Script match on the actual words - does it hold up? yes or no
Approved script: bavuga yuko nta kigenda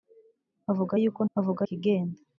no